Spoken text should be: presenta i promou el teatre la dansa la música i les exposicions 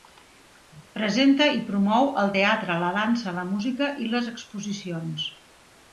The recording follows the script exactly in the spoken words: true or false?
true